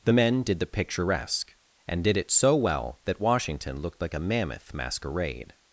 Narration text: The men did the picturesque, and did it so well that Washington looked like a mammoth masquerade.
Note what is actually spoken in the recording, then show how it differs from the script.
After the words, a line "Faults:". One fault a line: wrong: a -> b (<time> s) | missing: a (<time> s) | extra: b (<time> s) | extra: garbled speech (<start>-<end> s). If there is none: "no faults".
The men did the picturesque, and did it so well that Washington looked like a mammoth masquerade.
Faults:
no faults